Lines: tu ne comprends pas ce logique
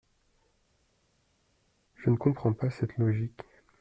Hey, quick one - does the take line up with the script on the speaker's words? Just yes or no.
no